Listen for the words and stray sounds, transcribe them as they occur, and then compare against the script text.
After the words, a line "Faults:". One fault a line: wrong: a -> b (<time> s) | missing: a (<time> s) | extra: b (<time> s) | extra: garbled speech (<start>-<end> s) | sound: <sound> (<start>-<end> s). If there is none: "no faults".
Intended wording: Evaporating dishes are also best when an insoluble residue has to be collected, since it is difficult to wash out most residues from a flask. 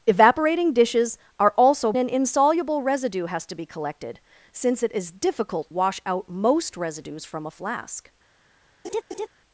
Evaporating dishes are also an insoluble residue has to be collected, since it is difficult wash out most residues from a flask.
Faults:
missing: best when (1.9 s)
missing: to (5.7 s)
sound: laugh (8.8-9.3 s)